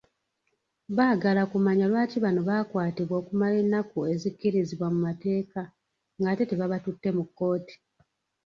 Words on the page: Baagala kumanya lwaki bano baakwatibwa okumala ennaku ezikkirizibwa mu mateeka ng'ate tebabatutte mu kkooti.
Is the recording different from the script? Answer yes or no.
no